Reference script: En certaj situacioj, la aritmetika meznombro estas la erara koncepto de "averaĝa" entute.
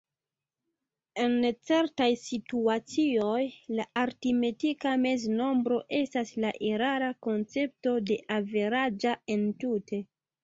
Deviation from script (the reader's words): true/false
false